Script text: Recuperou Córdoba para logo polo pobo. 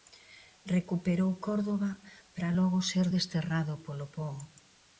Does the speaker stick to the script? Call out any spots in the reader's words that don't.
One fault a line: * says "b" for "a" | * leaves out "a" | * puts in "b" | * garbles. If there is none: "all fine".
* puts in "ser desterrado"